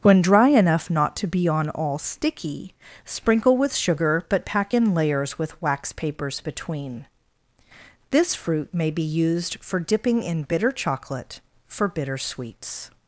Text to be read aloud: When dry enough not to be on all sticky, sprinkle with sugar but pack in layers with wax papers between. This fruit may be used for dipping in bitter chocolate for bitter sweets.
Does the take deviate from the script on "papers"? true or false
false